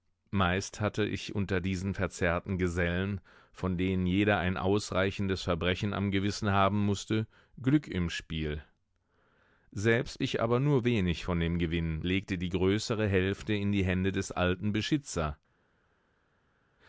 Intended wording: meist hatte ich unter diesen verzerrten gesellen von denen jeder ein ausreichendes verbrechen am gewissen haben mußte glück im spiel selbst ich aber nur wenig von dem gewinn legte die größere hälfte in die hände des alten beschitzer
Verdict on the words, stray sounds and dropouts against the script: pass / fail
pass